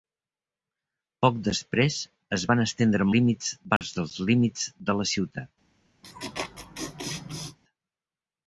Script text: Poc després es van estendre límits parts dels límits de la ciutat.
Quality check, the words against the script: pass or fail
pass